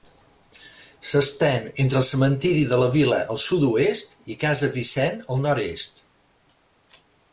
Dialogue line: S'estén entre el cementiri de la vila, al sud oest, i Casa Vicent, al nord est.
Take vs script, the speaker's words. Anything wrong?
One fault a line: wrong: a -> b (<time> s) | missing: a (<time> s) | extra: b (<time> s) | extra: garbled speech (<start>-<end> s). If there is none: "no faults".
no faults